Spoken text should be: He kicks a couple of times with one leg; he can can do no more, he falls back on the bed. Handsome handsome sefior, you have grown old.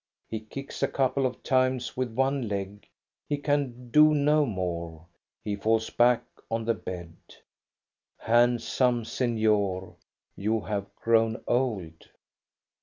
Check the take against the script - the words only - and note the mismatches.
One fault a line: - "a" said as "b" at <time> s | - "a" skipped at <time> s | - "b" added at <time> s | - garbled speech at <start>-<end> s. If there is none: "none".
- "can" skipped at 3.9 s
- "handsome" skipped at 9.0 s